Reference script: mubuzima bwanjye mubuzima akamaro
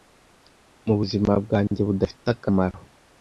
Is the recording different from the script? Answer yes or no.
yes